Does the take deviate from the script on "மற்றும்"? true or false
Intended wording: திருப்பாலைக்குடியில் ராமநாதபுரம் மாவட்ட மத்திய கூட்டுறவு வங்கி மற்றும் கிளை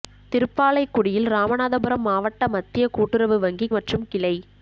false